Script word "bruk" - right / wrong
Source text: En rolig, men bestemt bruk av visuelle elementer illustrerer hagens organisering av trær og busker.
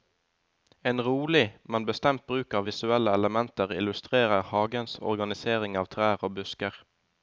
right